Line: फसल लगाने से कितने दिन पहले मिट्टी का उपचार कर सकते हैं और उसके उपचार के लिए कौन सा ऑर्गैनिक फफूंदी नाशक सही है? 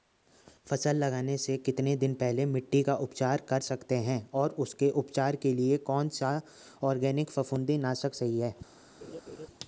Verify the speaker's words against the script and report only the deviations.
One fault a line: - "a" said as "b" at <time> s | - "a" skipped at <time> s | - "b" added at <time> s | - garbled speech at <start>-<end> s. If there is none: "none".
none